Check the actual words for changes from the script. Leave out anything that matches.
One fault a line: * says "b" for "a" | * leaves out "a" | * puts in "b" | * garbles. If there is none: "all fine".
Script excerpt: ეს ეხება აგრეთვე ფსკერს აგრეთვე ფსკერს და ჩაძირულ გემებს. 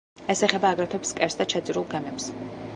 * leaves out "აგრეთვე ფსკერს"